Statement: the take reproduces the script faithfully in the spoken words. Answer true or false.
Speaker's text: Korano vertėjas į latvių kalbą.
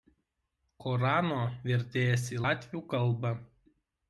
true